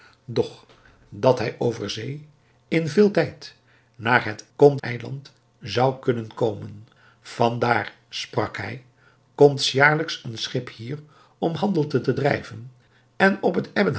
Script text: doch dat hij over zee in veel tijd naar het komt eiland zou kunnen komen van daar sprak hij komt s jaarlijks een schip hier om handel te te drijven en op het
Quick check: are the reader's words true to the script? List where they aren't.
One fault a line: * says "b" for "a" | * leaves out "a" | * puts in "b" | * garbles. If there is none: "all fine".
all fine